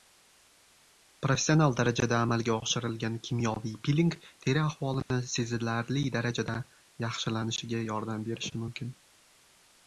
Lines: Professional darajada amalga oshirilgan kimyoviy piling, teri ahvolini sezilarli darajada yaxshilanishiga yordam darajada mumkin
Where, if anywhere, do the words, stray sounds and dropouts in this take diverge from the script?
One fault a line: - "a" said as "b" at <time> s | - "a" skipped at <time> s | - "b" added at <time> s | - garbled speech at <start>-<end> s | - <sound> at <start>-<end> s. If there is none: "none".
- dropout at 5.0-5.1 s
- "darajada" said as "berishi" at 8.3 s